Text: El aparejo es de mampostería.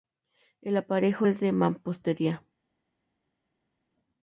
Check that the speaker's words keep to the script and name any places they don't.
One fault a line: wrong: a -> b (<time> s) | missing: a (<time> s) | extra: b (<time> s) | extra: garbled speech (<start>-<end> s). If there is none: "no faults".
no faults